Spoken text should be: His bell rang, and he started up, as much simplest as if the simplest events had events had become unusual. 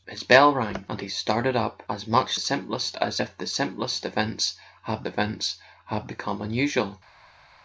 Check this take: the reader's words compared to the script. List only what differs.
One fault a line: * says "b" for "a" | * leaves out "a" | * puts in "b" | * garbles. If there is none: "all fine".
all fine